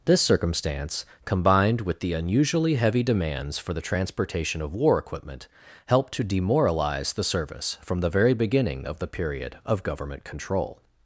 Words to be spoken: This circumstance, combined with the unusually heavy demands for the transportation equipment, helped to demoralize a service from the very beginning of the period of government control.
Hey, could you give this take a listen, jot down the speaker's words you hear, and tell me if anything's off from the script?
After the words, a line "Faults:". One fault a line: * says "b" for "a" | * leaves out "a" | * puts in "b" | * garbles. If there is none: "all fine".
This circumstance, combined with the unusually heavy demands for the transportation of war equipment, helped to demoralize the service from the very beginning of the period of government control.
Faults:
* puts in "of war"
* says "the" for "a"